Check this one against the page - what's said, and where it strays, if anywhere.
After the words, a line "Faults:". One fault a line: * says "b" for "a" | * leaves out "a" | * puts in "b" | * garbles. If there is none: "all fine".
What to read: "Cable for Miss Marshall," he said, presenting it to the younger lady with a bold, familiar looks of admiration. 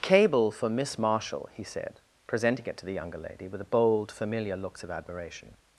"Cable for Miss Marshall," he said, presenting it to the younger lady with a bold, familiar looks of admiration.
Faults:
all fine